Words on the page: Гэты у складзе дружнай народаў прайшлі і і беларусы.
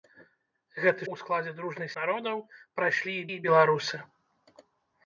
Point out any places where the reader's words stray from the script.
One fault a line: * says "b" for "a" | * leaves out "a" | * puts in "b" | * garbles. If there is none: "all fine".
all fine